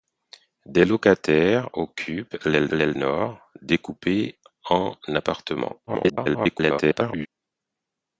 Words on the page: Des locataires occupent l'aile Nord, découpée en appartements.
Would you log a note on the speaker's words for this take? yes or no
yes